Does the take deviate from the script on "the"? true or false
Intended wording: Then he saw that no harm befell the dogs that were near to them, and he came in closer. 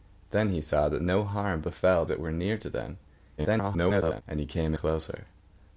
true